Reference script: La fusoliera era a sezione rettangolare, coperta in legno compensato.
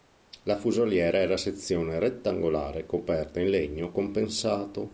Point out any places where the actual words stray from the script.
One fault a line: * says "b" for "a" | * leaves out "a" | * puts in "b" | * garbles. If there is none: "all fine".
all fine